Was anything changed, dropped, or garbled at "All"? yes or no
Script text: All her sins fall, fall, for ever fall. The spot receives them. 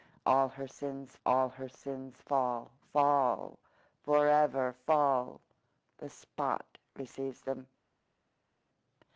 no